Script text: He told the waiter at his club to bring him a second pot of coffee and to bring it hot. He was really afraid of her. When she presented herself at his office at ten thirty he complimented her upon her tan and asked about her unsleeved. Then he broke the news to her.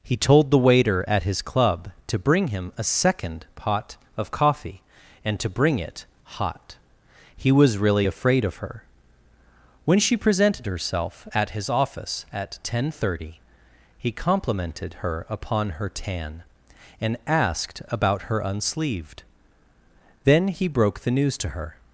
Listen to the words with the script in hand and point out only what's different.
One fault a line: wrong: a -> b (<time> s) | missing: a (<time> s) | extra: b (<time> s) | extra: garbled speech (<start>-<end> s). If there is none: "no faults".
no faults